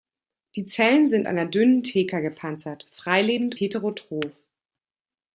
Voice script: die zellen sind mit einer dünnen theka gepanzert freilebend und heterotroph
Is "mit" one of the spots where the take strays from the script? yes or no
yes